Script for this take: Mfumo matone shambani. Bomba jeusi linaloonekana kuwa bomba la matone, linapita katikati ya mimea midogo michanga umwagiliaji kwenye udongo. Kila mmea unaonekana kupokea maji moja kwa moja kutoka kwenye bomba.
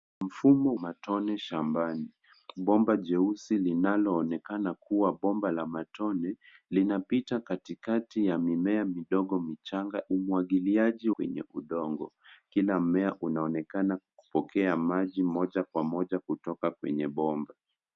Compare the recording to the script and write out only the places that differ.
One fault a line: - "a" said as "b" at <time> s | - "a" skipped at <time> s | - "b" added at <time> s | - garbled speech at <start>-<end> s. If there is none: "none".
none